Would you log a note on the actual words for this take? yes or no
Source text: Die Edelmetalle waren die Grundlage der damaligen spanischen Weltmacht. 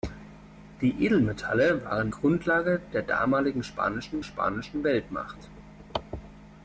yes